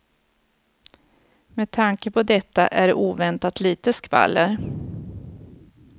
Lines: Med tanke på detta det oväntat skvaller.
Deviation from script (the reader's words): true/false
true